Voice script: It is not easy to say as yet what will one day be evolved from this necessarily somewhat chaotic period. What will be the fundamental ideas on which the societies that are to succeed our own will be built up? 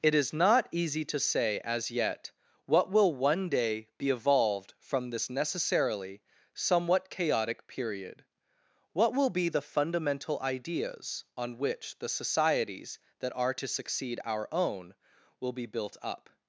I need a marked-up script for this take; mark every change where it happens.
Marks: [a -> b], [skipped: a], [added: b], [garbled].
It is not easy to say as yet what will one day be evolved from this necessarily somewhat chaotic period. What will be the fundamental ideas on which the societies that are to succeed our own will be built up?